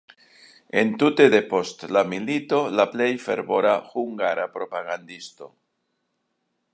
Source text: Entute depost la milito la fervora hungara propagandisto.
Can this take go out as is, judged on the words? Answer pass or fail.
fail